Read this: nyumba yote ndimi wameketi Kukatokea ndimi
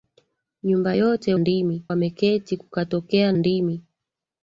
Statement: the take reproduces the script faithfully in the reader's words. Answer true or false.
true